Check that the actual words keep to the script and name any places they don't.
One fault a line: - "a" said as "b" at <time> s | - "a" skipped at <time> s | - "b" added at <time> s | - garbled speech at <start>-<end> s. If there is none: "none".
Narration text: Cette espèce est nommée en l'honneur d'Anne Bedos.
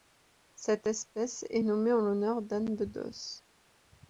none